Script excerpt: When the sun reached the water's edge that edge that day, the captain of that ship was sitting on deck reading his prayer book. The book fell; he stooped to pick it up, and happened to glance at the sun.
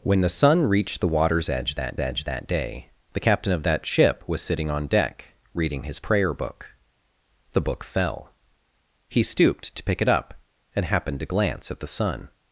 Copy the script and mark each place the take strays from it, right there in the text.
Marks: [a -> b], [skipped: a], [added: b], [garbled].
When the sun reached the water's edge that edge that day, the captain of that ship was sitting on deck reading his prayer book. The book fell; he stooped to pick it up, and happened to glance at the sun.